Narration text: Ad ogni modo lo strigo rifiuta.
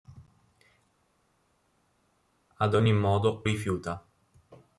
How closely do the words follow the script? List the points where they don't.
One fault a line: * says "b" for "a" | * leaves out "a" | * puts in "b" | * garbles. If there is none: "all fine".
* leaves out "lo strigo"